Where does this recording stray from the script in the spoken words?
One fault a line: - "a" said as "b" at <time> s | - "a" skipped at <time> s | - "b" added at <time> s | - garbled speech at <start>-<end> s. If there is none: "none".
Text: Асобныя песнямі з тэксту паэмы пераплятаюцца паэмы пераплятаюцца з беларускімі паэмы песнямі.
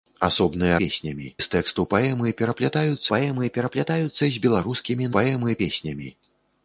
none